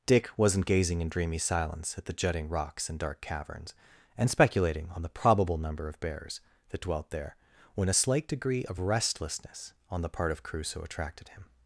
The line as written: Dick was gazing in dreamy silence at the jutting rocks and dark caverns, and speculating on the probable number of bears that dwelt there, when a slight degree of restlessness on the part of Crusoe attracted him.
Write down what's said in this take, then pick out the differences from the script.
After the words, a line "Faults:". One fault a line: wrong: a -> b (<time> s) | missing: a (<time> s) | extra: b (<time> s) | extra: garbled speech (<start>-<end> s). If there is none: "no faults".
Dick wasn't gazing in dreamy silence at the jutting rocks and dark caverns, and speculating on the probable number of bears that dwelt there, when a slight degree of restlessness on the part of Crusoe attracted him.
Faults:
wrong: was -> wasn't (0.4 s)